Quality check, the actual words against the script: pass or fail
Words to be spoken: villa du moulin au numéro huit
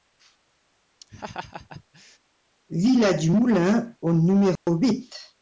pass